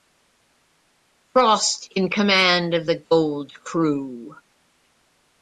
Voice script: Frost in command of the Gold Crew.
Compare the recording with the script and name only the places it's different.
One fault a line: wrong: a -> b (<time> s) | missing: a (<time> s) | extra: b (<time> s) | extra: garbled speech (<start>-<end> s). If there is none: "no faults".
no faults